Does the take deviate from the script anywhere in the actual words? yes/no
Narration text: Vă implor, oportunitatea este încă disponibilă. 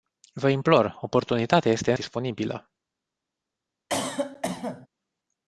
yes